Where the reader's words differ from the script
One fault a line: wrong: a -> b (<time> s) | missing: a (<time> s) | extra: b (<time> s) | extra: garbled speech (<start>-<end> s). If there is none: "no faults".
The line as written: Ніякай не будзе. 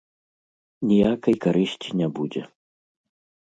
extra: карысці (1.5 s)